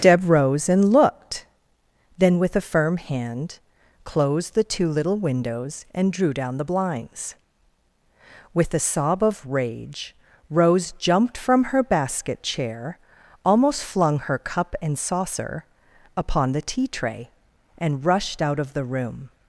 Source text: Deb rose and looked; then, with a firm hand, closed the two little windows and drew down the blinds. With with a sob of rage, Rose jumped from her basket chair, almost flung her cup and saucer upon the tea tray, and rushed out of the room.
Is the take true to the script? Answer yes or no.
no